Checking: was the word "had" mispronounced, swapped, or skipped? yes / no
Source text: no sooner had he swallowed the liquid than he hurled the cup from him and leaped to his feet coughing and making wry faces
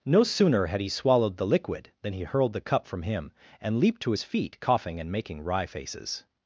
no